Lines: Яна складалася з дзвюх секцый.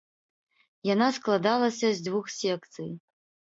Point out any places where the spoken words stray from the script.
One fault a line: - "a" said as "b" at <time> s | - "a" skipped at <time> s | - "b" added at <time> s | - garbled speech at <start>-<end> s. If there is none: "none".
none